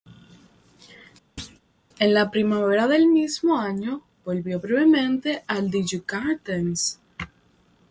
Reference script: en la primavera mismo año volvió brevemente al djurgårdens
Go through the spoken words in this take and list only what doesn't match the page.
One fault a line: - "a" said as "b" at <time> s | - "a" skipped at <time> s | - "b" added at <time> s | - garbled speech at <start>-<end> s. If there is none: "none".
- "del" added at 2.9 s